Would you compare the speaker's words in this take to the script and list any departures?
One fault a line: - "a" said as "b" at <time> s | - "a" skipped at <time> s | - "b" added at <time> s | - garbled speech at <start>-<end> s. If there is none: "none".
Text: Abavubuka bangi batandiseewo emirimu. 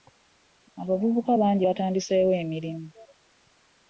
none